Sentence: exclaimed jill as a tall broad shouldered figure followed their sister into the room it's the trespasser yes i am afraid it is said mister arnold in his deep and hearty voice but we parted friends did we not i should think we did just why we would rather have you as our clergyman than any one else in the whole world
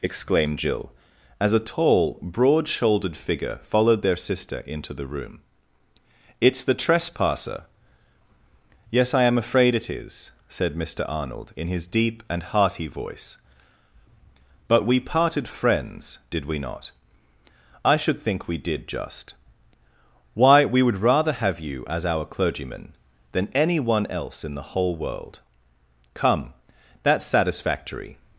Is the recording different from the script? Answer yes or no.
yes